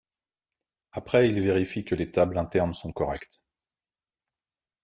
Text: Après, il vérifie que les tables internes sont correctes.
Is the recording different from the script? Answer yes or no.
no